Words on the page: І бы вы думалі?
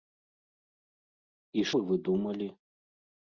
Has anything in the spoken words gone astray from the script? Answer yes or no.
no